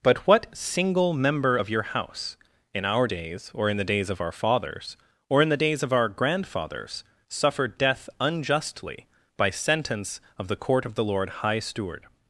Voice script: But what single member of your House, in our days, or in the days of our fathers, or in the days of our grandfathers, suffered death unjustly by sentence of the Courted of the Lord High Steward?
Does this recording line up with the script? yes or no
no